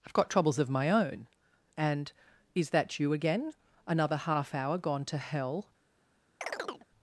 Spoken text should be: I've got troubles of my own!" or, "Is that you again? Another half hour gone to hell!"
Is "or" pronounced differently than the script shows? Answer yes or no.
yes